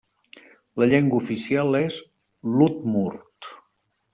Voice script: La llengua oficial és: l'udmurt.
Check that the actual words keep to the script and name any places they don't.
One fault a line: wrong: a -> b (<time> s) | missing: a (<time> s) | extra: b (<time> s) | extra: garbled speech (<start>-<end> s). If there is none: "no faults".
no faults